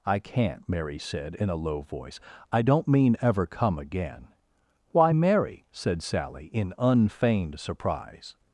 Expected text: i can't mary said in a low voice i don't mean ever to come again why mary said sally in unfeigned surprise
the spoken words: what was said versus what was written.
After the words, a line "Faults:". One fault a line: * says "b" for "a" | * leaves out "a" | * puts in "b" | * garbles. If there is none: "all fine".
i can't mary said in a low voice i don't mean ever come again why mary said sally in unfeigned surprise
Faults:
* leaves out "to"